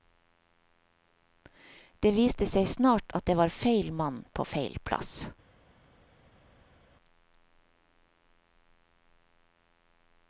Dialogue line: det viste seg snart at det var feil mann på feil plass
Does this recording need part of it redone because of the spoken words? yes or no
no